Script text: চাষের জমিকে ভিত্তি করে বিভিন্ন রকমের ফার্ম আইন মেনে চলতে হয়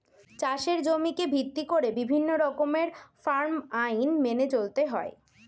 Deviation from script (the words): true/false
false